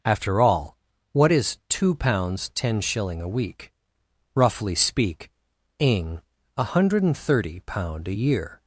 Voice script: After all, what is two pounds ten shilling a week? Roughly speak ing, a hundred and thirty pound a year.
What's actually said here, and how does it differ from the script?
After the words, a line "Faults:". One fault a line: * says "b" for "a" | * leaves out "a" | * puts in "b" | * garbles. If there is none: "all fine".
After all, what is two pounds ten shilling a week? Roughly speak ing, a hundred and thirty pound a year.
Faults:
all fine